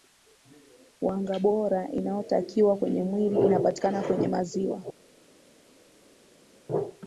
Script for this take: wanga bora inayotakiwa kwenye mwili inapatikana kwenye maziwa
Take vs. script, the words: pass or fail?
pass